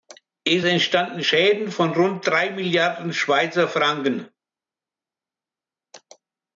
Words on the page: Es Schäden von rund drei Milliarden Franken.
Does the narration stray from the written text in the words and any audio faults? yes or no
yes